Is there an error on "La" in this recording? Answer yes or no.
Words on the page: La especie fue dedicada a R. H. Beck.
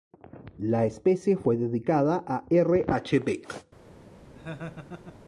no